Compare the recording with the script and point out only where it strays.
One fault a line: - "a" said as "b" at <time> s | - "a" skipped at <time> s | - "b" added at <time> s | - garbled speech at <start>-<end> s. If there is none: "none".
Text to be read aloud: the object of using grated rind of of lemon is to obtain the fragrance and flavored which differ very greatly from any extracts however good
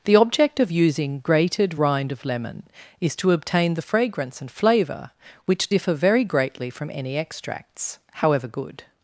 - "of" skipped at 2.2 s
- "flavored" said as "flavor" at 4.5 s